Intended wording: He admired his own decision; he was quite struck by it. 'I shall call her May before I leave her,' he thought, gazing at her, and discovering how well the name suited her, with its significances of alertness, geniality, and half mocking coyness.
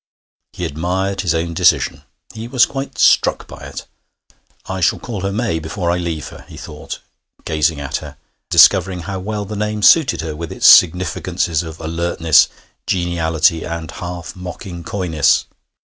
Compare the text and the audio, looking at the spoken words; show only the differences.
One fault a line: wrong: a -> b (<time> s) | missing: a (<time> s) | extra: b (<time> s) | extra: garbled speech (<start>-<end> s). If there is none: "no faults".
missing: and (8.2 s)